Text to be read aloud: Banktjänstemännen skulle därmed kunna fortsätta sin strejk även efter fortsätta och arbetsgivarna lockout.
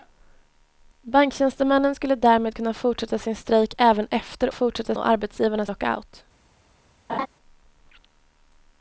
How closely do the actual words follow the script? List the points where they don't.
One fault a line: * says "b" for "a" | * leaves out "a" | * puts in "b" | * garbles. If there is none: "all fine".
all fine